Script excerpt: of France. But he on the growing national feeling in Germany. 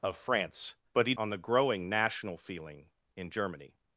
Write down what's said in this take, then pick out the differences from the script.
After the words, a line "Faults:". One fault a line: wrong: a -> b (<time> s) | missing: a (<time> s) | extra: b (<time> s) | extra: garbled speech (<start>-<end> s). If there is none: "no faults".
of France. But he on the growing national feeling in Germany.
Faults:
no faults